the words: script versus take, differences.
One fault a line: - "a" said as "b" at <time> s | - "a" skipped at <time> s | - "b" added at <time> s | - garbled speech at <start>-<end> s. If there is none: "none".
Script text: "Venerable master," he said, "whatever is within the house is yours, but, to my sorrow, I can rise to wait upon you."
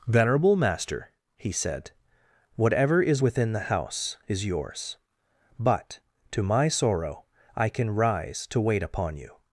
none